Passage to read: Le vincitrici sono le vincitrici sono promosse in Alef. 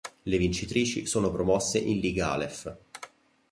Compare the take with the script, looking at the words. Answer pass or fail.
fail